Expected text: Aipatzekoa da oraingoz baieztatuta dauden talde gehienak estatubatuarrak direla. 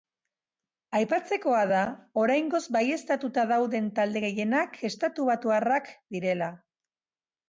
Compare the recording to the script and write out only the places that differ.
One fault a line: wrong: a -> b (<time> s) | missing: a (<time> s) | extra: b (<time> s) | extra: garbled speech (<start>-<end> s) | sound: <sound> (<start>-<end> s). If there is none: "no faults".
no faults